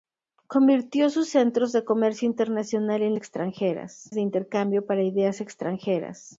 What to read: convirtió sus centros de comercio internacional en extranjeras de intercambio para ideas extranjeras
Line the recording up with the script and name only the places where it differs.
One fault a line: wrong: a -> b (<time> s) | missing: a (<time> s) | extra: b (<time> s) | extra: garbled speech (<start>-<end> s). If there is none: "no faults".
no faults